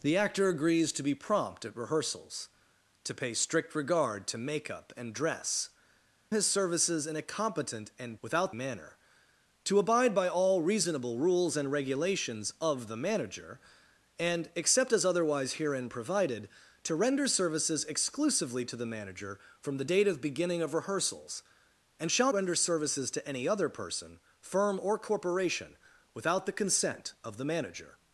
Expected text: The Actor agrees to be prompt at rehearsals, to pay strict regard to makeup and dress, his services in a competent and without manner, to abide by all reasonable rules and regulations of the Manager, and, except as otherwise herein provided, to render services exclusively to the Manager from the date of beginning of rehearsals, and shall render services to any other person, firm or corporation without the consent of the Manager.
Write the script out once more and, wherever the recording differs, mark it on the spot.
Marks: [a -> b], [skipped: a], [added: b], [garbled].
The Actor agrees to be prompt at rehearsals, to pay strict regard to makeup and dress, his services in a competent and without manner, to abide by all reasonable rules and regulations of the Manager, and, except as otherwise herein provided, to render services exclusively to the Manager from the date of beginning of rehearsals, and shall render services to any other person, firm or corporation without the consent of the Manager.